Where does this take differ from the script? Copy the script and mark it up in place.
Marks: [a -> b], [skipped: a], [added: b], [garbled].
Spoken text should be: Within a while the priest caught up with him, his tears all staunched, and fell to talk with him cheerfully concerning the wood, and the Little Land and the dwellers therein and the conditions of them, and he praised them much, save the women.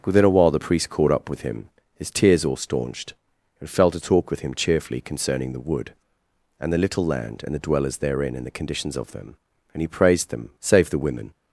Within a while the priest caught up with him, his tears all staunched, and fell to talk with him cheerfully concerning the wood, and the Little Land and the dwellers therein and the conditions of them, and he praised them [skipped: much,] save the women.